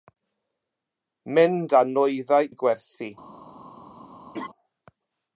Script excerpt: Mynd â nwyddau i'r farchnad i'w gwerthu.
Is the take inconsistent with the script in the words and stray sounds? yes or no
yes